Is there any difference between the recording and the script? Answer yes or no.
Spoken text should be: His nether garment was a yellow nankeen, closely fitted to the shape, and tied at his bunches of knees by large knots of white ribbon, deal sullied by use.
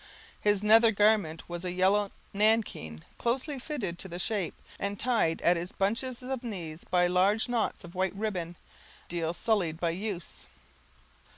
no